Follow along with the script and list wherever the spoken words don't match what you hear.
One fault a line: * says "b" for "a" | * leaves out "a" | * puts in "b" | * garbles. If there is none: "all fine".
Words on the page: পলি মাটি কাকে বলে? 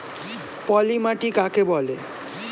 all fine